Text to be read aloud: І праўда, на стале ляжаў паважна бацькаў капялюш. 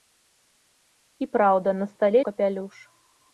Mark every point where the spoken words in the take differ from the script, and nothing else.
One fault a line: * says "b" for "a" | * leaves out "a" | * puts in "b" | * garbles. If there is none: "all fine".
* leaves out "ляжаў паважна бацькаў"